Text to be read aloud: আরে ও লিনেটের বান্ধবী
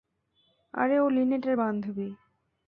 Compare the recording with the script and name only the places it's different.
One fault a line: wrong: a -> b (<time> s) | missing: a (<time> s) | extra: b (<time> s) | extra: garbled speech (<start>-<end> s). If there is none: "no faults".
no faults